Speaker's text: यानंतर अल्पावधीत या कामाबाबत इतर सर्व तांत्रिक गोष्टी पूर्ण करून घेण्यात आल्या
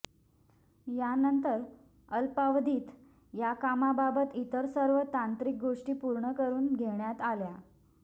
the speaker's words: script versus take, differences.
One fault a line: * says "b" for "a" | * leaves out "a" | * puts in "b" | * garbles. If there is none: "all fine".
all fine